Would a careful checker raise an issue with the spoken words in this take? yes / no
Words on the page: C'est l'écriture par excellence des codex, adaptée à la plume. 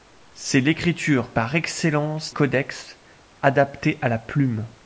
yes